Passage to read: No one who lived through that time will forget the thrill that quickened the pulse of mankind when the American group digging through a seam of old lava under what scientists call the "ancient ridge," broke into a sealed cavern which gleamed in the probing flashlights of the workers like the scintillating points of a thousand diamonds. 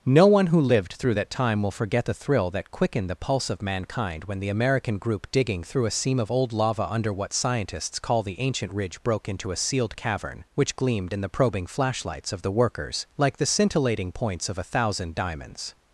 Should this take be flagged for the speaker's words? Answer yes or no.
no